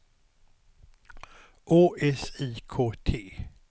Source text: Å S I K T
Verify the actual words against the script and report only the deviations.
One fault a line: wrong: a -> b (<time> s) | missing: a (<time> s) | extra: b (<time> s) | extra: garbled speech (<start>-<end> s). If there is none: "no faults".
no faults